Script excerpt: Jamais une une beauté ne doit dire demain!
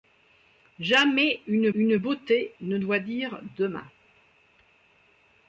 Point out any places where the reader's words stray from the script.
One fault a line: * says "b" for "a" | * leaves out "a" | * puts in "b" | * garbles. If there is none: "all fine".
all fine